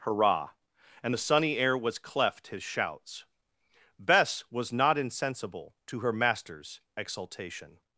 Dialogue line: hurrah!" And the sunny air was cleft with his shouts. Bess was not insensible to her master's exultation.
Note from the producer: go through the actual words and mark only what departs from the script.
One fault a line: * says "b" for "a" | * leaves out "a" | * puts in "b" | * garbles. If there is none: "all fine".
* leaves out "with"